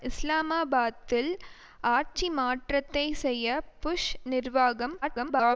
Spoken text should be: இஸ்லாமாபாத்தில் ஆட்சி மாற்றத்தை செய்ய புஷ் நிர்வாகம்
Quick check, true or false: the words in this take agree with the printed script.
false